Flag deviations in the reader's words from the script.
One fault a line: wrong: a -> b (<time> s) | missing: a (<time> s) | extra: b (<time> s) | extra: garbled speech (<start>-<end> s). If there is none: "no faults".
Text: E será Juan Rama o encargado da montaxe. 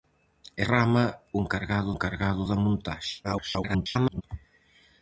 missing: será Juan (0.6 s)
extra: encargado (1.9 s)
extra: garbled speech (3.2-4.2 s)